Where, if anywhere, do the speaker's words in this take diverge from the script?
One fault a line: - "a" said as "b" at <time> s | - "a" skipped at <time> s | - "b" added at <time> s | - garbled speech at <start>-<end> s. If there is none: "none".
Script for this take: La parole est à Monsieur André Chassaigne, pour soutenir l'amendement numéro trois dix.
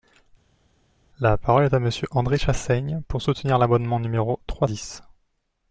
none